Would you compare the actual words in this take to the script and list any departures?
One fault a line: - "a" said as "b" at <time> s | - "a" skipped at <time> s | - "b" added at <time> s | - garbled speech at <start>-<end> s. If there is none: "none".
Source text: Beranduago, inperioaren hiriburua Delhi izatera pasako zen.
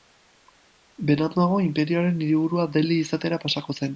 none